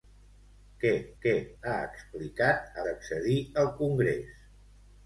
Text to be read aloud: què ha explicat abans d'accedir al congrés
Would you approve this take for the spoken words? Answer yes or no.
no